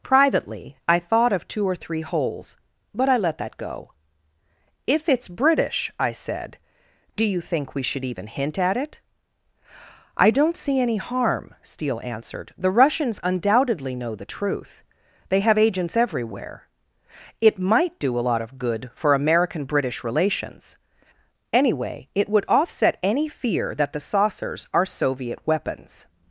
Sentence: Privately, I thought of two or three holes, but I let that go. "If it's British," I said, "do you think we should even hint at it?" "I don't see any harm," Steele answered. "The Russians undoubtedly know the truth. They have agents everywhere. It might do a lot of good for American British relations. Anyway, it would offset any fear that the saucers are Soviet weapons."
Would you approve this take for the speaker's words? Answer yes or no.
yes